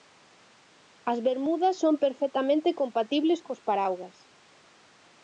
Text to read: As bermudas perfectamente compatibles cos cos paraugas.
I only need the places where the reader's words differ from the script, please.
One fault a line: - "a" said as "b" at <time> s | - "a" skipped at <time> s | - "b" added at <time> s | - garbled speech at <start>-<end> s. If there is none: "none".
- "son" added at 1.8 s
- "cos" skipped at 3.6 s